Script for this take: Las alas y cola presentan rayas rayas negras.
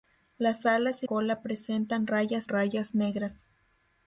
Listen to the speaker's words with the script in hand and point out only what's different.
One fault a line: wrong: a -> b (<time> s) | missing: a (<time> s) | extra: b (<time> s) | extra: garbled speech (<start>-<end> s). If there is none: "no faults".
no faults